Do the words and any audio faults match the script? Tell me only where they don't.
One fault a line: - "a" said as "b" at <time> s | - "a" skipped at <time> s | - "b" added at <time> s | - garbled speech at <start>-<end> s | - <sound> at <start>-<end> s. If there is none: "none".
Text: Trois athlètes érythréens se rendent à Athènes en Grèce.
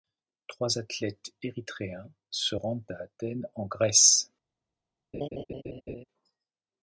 - laugh at 5.1-6.0 s